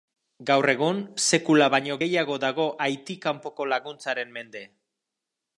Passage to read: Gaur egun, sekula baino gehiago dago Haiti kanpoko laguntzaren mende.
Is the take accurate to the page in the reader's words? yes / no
yes